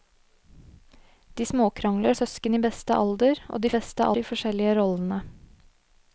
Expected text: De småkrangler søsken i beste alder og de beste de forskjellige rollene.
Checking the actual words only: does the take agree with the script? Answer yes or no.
yes